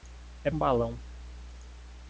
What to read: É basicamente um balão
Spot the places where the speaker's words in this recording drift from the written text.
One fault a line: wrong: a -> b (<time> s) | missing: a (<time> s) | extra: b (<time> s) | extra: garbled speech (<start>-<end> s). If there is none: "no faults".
missing: basicamente (0.5 s)